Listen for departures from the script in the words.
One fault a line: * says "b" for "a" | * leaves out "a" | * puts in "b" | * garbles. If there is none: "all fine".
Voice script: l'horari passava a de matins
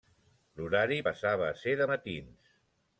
* puts in "ser"